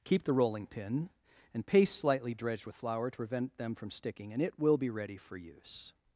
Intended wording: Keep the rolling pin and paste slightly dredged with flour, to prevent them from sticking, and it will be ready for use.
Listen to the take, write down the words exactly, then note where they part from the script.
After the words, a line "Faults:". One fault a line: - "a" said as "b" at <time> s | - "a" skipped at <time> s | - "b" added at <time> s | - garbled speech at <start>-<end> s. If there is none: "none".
Keep the rolling pin and paste slightly dredged with flour, to prevent them from sticking, and it will be ready for use.
Faults:
none